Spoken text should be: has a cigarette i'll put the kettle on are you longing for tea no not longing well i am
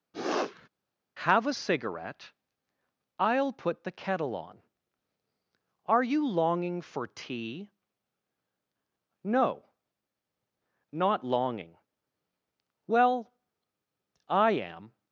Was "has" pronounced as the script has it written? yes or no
no